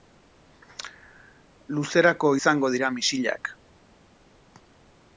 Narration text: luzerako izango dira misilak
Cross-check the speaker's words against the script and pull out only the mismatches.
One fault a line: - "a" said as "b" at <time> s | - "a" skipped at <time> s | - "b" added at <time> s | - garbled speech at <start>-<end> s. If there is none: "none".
none